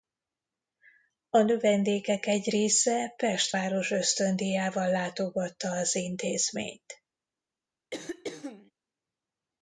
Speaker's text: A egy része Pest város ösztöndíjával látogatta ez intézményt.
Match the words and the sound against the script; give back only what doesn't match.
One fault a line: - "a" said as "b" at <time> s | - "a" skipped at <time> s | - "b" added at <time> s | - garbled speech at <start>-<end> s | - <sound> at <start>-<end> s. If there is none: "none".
- "növendékek" added at 1.4 s
- "ez" said as "az" at 5.7 s
- throat clearing at 7.9-8.7 s